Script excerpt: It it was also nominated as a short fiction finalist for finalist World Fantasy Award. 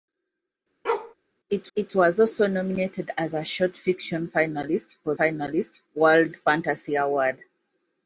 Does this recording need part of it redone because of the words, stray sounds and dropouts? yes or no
yes